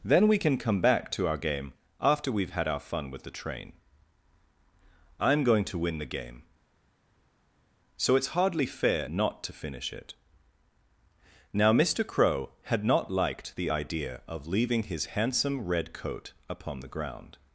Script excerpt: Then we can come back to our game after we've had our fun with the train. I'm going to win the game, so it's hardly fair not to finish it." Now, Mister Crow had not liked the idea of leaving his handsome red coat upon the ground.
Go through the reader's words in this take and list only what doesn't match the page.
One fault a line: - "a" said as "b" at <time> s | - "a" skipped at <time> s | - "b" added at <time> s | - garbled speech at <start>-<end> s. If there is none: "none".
none